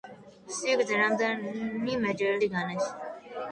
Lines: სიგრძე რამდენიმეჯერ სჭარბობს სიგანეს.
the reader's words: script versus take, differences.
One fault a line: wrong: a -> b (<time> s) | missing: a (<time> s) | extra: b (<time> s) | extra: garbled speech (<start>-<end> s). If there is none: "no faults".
missing: სჭარბობს (2.4 s)